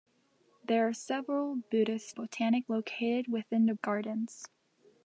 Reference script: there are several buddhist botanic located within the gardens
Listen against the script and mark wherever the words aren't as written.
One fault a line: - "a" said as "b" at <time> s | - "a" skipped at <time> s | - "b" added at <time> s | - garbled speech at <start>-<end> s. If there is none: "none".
none